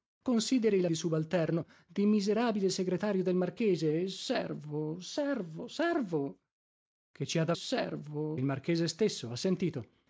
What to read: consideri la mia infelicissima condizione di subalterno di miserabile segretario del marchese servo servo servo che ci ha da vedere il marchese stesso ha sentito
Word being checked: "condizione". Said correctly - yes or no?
no